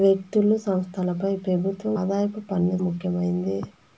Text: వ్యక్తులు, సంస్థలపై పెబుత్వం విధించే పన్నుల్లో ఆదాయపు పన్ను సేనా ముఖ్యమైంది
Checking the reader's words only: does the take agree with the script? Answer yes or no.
no